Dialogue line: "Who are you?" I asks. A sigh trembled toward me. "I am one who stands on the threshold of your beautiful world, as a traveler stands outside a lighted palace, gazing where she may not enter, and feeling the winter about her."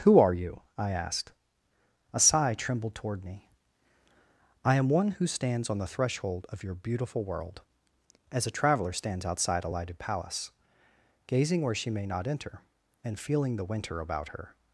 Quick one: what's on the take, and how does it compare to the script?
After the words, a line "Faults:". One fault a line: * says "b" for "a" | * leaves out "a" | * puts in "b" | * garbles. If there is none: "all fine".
"Who are you?" I asked. A sigh trembled toward me. "I am one who stands on the threshold of your beautiful world, as a traveler stands outside a lighted palace, gazing where she may not enter, and feeling the winter about her."
Faults:
* says "asked" for "asks"